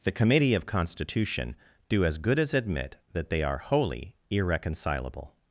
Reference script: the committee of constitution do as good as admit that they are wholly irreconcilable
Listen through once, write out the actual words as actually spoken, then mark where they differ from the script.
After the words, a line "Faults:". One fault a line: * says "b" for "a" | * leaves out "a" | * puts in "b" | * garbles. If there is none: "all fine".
the committee of constitution do as good as admit that they are wholly irreconcilable
Faults:
all fine